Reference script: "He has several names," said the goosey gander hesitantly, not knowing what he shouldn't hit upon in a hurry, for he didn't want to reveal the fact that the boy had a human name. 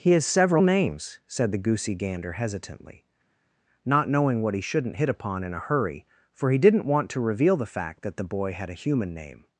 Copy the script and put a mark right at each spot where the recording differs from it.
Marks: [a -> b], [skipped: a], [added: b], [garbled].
"He has several names," said the goosey gander hesitantly, not knowing what he shouldn't hit upon in a hurry, for he didn't want to reveal the fact that the boy had a human name.